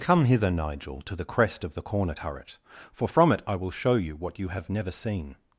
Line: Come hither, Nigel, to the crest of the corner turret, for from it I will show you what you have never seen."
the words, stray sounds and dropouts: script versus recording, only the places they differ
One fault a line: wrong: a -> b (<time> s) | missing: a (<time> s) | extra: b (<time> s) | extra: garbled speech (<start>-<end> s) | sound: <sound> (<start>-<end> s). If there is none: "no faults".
no faults